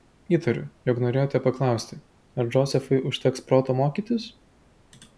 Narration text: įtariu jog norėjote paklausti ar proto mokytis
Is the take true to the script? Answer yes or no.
no